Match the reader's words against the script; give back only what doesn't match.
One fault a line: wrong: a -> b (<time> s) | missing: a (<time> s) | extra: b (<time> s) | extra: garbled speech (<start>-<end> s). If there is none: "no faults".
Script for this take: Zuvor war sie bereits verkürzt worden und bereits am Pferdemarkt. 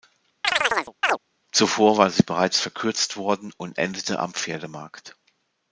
wrong: bereits -> endete (3.8 s)